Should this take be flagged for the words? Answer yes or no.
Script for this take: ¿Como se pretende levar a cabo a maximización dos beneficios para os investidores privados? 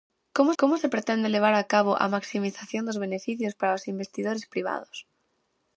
yes